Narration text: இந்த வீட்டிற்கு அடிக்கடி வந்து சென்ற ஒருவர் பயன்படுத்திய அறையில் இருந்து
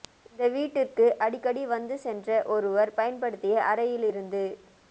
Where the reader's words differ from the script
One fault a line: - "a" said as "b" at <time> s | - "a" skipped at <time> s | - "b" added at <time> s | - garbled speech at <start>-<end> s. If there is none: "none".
none